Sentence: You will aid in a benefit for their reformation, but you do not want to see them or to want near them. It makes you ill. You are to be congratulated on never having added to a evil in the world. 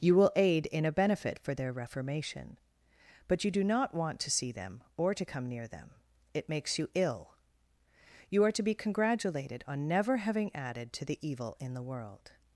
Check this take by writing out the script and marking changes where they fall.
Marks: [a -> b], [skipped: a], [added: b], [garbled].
You will aid in a benefit for their reformation, but you do not want to see them or to [want -> come] near them. It makes you ill. You are to be congratulated on never having added to [a -> the] evil in the world.